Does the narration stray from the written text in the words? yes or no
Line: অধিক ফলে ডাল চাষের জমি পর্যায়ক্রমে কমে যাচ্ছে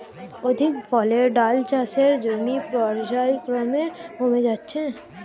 no